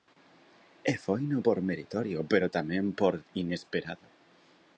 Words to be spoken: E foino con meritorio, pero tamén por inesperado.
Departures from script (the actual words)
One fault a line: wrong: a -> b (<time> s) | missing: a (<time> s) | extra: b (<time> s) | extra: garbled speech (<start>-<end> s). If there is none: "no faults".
wrong: con -> por (1.4 s)